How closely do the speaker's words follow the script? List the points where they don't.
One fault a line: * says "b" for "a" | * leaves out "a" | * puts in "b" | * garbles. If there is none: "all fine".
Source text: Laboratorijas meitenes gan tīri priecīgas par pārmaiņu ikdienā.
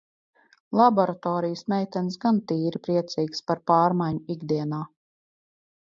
all fine